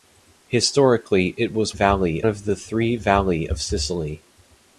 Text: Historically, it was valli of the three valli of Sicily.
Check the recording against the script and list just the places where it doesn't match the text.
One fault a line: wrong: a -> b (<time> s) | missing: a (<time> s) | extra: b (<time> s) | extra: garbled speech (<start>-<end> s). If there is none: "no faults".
no faults